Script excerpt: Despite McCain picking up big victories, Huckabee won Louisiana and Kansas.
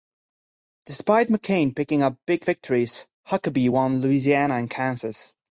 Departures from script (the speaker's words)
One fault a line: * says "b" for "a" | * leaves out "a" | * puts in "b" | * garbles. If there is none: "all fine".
all fine